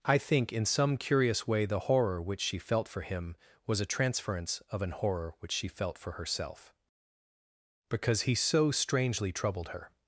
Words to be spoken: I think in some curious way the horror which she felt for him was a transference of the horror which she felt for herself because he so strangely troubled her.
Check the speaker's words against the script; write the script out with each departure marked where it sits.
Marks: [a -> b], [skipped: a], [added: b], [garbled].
I think in some curious way the horror which she felt for him was a transference of [the -> an] horror which she felt for herself because he so strangely troubled her.